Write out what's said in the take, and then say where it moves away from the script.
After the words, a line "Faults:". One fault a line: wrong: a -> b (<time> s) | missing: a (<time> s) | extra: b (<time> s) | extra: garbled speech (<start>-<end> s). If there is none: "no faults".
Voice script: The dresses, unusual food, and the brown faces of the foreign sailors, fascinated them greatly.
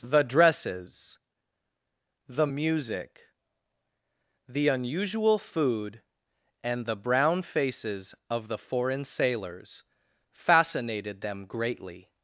The dresses, the music, the unusual food, and the brown faces of the foreign sailors, fascinated them greatly.
Faults:
extra: the music the (2.3 s)